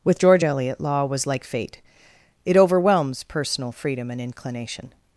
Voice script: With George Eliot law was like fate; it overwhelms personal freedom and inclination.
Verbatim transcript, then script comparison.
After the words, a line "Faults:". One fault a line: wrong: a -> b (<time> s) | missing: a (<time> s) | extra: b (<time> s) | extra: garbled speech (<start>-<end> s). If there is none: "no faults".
With George Eliot law was like fate; it overwhelms personal freedom and inclination.
Faults:
no faults